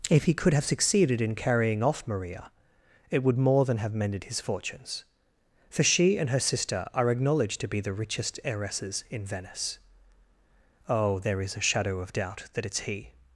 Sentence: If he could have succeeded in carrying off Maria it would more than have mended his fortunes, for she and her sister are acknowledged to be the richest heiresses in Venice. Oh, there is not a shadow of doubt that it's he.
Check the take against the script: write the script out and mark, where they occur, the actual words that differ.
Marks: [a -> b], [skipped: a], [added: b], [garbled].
If he could have succeeded in carrying off Maria it would more than have mended his fortunes, for she and her sister are acknowledged to be the richest heiresses in Venice. Oh, there is [skipped: not] a shadow of doubt that it's he.